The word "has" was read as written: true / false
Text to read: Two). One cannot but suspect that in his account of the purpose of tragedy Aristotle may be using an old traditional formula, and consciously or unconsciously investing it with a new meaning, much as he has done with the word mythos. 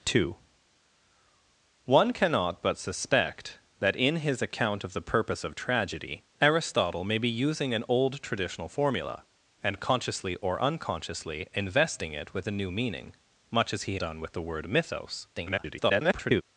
false